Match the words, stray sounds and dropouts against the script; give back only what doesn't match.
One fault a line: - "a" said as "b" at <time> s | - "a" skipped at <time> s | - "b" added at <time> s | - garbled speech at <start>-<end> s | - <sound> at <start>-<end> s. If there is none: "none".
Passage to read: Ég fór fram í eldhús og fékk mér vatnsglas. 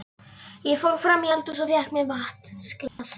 - dropout at 2.9-3.0 s